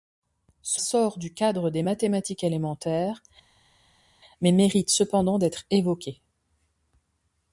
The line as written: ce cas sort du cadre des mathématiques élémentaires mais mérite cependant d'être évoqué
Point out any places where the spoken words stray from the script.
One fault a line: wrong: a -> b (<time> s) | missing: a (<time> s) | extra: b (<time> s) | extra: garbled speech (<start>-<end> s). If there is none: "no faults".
missing: cas (0.8 s)